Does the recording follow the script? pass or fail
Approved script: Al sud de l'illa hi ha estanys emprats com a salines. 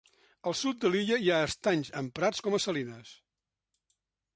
pass